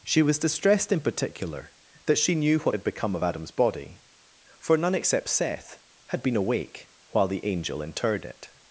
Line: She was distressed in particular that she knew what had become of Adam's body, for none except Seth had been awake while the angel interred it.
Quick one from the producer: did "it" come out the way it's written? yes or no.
yes